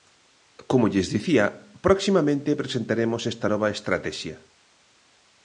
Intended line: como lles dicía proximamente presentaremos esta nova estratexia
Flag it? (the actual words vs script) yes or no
no